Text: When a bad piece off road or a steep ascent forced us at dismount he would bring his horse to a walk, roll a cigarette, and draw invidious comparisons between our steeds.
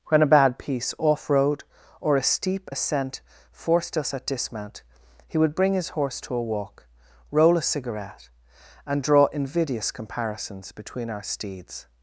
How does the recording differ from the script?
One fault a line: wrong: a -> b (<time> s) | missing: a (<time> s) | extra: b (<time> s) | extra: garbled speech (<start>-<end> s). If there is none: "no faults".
no faults